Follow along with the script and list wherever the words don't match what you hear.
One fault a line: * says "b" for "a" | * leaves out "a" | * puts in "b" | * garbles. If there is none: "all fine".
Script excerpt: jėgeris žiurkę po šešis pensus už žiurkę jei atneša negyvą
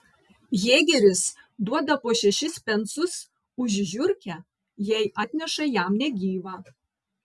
* says "duoda" for "žiurkę"
* puts in "jam"